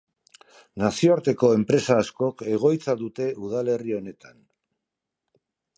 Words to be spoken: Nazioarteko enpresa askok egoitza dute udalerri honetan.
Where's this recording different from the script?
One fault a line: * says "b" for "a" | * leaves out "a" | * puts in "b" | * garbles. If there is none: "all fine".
all fine